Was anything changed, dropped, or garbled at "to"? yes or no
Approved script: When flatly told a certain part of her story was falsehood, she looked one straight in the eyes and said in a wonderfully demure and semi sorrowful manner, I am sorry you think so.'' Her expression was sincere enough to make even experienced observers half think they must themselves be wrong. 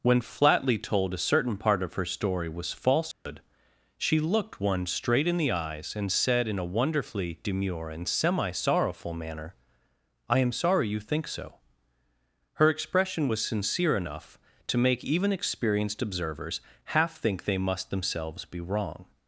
no